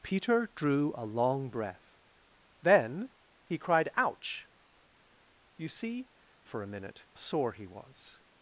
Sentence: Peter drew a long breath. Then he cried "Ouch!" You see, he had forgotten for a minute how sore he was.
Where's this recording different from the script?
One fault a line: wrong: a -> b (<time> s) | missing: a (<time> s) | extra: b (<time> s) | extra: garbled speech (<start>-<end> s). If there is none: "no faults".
missing: he had forgotten (6.1 s)
missing: how (7.0 s)